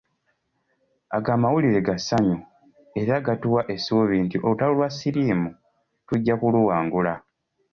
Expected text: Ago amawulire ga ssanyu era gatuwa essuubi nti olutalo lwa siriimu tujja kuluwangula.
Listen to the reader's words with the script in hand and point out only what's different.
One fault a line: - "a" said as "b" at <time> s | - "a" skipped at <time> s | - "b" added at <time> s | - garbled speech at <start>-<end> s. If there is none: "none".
none